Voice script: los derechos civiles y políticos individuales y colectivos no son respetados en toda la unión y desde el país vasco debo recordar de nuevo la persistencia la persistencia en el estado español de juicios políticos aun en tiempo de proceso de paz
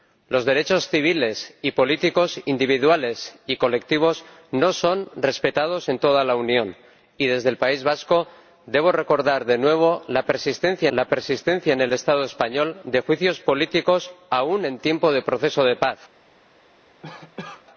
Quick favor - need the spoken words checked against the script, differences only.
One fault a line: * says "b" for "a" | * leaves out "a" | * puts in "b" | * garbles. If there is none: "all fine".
all fine